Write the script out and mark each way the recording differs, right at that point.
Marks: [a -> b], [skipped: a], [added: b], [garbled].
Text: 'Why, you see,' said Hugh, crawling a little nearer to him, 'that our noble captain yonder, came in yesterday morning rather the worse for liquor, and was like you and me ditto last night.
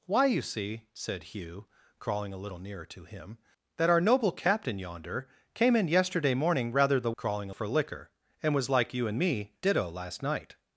'Why, you see,' said Hugh, crawling a little nearer to him, 'that our noble captain yonder, came in yesterday morning rather the [worse -> crawling] for liquor, and was like you and me ditto last night.